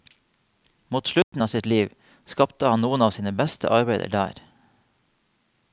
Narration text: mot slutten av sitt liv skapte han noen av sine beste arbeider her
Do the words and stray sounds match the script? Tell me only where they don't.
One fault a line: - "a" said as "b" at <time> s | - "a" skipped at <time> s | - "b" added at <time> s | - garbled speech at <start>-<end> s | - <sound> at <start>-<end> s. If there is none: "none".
- dropout at 1.2-1.3 s
- "her" said as "der" at 4.1 s